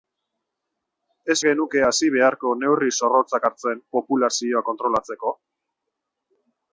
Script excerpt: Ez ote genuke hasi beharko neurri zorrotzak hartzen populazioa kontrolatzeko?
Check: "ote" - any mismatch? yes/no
yes